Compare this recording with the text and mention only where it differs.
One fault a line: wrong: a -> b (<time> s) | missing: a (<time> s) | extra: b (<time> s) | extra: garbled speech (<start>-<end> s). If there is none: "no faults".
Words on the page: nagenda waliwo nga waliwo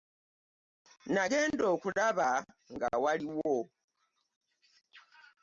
wrong: waliwo -> okulaba (1.7 s)